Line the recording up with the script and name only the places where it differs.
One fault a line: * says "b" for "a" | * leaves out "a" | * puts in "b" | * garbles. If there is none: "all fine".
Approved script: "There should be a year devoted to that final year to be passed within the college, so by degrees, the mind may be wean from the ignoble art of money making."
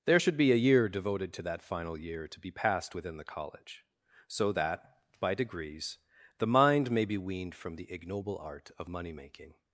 * puts in "that"
* says "weaned" for "wean"